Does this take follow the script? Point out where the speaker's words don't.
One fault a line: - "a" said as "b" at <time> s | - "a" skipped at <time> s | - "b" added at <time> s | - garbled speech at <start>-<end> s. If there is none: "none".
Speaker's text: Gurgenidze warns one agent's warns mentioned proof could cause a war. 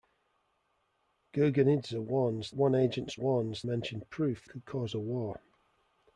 none